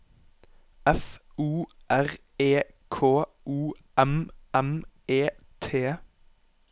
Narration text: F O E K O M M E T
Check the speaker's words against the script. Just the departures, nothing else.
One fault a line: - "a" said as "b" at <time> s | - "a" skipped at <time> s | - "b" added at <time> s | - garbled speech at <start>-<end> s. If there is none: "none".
- "R" added at 1.9 s